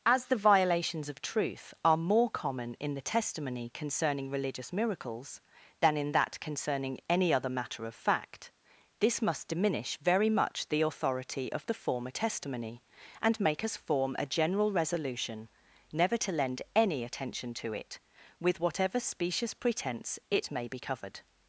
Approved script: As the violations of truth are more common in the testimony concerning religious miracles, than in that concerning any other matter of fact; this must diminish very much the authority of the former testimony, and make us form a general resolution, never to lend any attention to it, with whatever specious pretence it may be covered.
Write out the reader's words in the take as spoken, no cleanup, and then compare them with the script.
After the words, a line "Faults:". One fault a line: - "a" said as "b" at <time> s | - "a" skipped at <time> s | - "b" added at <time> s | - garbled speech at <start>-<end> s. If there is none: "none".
As the violations of truth are more common in the testimony concerning religious miracles, than in that concerning any other matter of fact; this must diminish very much the authority of the former testimony, and make us form a general resolution, never to lend any attention to it, with whatever specious pretence it may be covered.
Faults:
none